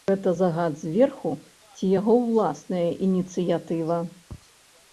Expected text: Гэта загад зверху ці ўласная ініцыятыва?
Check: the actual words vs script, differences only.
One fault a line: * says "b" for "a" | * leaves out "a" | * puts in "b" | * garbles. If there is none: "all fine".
* puts in "яго"